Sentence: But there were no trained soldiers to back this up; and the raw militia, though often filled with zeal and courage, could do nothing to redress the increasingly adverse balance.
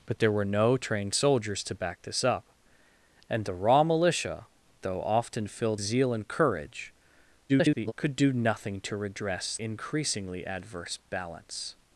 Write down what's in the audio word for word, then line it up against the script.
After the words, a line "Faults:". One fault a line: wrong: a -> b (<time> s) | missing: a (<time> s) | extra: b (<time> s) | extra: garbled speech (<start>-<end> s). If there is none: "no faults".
But there were no trained soldiers to back this up; and the raw militia, though often filled zeal and courage, [garbled] could do nothing to redress increasingly adverse balance.
Faults:
missing: with (5.8 s)
extra: garbled speech (7.5-7.9 s)
missing: the (9.6 s)